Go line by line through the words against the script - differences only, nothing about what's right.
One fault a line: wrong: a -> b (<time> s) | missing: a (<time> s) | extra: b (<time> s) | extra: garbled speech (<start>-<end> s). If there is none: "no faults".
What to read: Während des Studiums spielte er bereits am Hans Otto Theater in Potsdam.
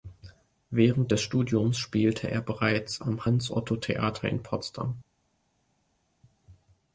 no faults